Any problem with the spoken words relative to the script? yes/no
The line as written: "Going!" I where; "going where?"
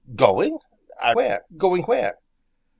no